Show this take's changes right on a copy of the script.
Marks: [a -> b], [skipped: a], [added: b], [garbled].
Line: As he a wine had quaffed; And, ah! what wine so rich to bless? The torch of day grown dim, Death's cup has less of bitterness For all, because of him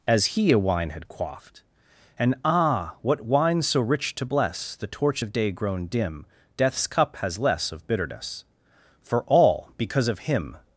As he a wine had quaffed; And, ah! what wine so rich to bless? The torch of day grown dim, Death's cup has less of bitterness For all, because of him